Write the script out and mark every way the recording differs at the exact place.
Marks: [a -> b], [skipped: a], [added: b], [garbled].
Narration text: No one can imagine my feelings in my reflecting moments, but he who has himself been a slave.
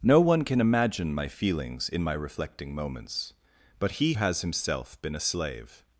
No one can imagine my feelings in my reflecting moments, but he [skipped: who] has himself been a slave.